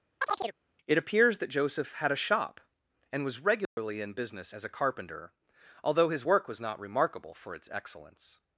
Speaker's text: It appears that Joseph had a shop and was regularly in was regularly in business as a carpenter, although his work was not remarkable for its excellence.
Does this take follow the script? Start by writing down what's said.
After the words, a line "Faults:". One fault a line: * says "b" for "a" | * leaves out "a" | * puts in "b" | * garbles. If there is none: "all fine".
It appears that Joseph had a shop and was regularly in business as a carpenter, although his work was not remarkable for its excellence.
Faults:
* leaves out "was regularly in"